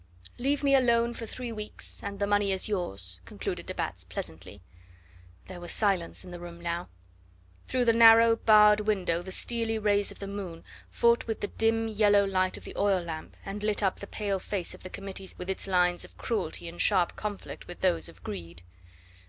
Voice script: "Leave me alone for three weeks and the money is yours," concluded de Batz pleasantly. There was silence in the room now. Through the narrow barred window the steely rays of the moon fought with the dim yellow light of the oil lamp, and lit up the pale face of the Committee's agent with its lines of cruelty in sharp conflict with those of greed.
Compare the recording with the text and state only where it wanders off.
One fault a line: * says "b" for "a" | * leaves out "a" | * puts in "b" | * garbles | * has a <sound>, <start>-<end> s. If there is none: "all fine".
* leaves out "agent"